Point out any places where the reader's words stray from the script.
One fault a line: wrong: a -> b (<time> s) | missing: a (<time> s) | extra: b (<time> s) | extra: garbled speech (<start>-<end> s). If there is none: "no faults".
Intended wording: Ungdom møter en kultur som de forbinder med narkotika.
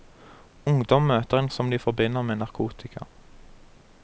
missing: kultur (1.5 s)